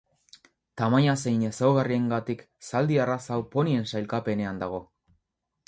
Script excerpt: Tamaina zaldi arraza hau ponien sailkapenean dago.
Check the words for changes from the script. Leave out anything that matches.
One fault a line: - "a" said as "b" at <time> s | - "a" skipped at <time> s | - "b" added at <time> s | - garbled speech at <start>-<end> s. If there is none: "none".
- "zein ezaugarriengatik" added at 1.2 s